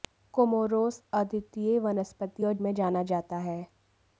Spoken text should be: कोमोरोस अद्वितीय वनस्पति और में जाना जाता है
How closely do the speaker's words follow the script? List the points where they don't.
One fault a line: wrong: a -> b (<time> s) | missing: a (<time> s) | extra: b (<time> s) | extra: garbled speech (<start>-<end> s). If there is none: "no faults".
no faults